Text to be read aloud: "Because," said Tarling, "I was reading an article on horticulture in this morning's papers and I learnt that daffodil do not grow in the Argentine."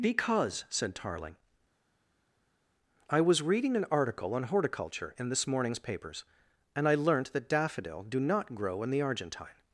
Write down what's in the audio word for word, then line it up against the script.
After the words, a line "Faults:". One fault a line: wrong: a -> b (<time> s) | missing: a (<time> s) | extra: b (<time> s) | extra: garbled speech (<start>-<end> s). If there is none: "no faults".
"Because," said Tarling, "I was reading an article on horticulture in this morning's papers and I learnt that daffodil do not grow in the Argentine."
Faults:
no faults